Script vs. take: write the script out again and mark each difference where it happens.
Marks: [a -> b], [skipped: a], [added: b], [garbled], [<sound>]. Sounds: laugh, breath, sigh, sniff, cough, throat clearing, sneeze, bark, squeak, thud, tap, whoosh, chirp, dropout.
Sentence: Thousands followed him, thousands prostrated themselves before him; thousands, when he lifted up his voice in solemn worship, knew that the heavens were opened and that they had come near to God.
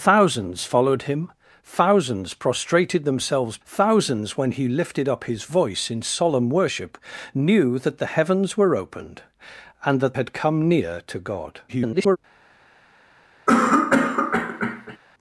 Thousands followed him, thousands prostrated themselves [skipped: before him;] thousands, when he lifted up his voice in solemn worship, knew that the heavens were opened and that [skipped: they] had come near to God. [garbled] [cough]